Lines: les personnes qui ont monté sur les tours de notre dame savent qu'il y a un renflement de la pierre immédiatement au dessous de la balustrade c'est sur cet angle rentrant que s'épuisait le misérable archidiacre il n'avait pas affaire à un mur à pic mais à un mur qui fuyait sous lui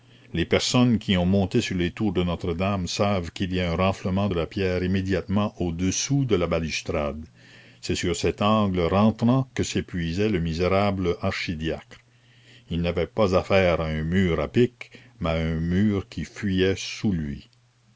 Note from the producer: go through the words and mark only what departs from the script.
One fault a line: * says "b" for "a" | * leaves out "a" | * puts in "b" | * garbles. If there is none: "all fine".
all fine